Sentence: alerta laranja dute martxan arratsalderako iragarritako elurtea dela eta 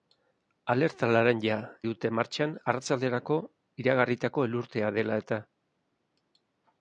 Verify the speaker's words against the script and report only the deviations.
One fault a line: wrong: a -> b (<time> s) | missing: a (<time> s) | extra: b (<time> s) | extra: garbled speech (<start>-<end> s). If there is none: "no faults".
no faults